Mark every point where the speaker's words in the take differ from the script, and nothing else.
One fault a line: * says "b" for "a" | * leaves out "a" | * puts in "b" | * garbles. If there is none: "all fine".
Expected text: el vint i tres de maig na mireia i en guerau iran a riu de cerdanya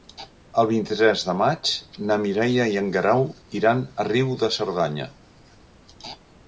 all fine